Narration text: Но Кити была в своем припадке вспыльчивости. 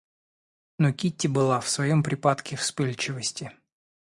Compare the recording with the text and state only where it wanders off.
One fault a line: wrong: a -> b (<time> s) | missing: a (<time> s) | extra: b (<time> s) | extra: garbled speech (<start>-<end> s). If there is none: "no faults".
no faults